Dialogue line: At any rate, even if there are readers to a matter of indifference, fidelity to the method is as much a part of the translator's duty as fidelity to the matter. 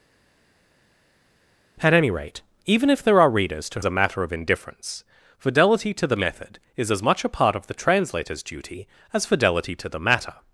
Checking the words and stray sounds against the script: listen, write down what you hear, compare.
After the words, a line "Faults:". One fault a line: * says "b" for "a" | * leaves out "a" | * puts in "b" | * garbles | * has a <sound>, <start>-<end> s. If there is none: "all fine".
At any rate, even if there are readers to a matter of indifference, fidelity to the method is as much a part of the translator's duty as fidelity to the matter.
Faults:
all fine